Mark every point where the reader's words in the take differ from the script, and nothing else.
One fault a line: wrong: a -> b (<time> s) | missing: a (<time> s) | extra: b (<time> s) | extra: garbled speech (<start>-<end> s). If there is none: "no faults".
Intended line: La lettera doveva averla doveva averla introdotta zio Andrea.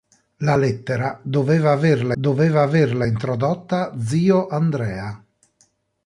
no faults